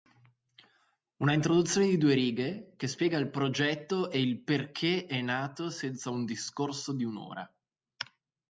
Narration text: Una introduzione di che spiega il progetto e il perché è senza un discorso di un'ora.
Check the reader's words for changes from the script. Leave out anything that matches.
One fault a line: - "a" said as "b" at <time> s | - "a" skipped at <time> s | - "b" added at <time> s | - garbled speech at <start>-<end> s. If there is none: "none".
- "due righe" added at 2.0 s
- "nato" added at 5.2 s